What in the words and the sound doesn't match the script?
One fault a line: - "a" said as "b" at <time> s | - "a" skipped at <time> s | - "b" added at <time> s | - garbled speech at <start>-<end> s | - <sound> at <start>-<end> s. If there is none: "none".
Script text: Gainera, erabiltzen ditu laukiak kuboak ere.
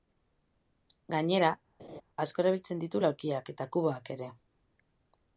- laugh at 1.8-2.0 s
- "asko" added at 2.3 s
- "eta" added at 3.5 s